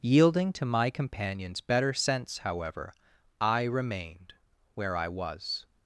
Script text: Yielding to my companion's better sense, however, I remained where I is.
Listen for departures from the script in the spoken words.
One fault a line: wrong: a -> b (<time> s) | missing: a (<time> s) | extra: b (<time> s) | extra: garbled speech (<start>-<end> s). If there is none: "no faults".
wrong: is -> was (5.1 s)